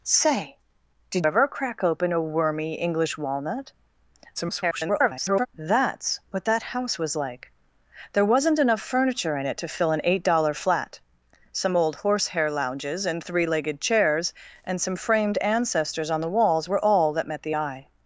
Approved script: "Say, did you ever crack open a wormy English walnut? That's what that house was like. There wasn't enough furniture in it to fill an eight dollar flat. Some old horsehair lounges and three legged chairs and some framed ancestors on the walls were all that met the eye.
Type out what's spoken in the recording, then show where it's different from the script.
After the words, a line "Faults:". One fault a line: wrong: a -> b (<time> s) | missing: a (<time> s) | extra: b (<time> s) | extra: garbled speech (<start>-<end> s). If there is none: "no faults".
"Say, did ever crack open a wormy English walnut? [garbled] That's what that house was like. There wasn't enough furniture in it to fill an eight dollar flat. Some old horsehair lounges and three legged chairs and some framed ancestors on the walls were all that met the eye.
Faults:
missing: you (1.3 s)
extra: garbled speech (4.3-5.5 s)